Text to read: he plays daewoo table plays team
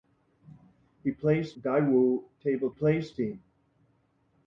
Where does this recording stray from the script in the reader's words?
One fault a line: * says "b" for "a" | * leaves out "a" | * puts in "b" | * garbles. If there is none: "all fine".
all fine